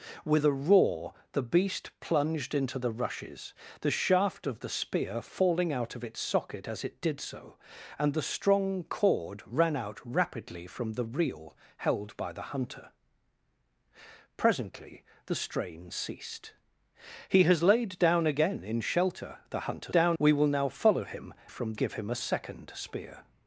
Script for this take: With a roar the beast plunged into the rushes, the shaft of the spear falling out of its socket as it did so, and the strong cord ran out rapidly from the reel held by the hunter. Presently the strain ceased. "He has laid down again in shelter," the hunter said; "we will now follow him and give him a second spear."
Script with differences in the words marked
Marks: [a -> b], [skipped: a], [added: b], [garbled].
With a roar the beast plunged into the rushes, the shaft of the spear falling out of its socket as it did so, and the strong cord ran out rapidly from the reel held by the hunter. Presently the strain ceased. "He has laid down again in shelter," the hunter [said; -> down] "we will now follow him [and -> from] give him a second spear."